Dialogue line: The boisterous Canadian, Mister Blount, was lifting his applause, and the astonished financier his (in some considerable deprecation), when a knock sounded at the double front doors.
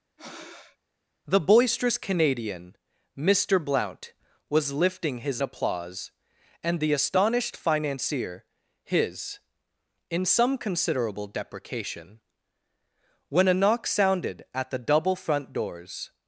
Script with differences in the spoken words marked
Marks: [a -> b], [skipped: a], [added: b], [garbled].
The boisterous Canadian, Mister Blount, was lifting his applause, and the astonished financier his (in some considerable deprecation), when a knock sounded at the double front doors.